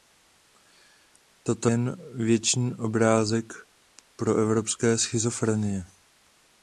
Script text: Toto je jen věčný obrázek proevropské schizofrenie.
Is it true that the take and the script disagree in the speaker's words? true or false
true